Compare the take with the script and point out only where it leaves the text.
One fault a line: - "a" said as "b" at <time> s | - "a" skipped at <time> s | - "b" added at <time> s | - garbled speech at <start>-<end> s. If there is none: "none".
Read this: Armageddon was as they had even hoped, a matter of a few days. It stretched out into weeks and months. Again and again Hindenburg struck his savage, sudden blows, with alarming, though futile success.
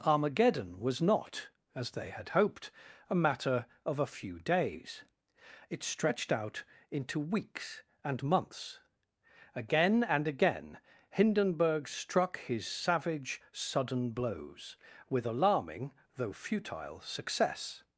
- "not" added at 1.0 s
- "even" skipped at 2.3 s